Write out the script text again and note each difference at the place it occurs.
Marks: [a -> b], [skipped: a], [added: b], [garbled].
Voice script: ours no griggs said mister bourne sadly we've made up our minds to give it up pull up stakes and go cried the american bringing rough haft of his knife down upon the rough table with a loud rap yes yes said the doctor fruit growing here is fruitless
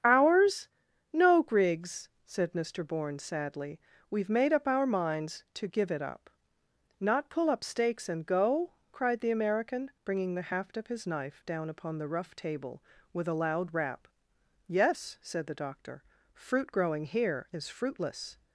ours no griggs said mister bourne sadly we've made up our minds to give it up [added: not] pull up stakes and go cried the american bringing [rough -> the] haft of his knife down upon the rough table with a loud rap yes [skipped: yes] said the doctor fruit growing here is fruitless